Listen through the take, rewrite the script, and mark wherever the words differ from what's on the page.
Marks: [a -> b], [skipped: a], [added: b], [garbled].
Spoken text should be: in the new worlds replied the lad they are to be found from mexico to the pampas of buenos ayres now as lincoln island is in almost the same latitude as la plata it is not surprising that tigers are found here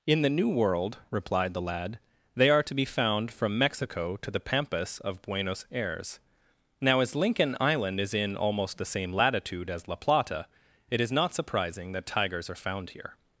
in the new [worlds -> world] replied the lad they are to be found from mexico to the pampas of buenos ayres now as lincoln island is in almost the same latitude as la plata it is not surprising that tigers are found here